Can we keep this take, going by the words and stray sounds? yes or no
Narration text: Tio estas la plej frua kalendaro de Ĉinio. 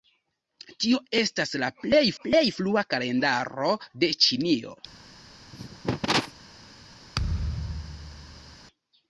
no